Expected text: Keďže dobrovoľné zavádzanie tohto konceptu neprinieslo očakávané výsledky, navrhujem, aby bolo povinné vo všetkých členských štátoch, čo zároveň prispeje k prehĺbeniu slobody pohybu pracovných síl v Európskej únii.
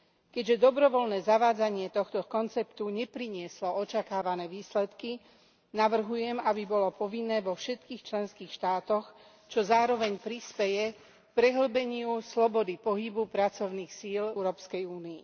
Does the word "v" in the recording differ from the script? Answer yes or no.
yes